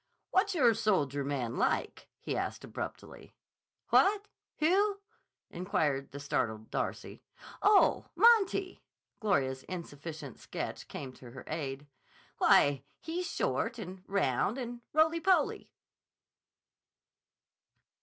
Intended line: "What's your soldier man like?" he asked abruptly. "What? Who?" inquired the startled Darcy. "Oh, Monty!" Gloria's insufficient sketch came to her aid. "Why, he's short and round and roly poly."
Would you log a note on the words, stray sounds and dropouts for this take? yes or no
no